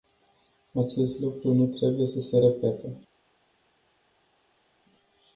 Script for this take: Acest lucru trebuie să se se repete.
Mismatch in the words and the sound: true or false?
true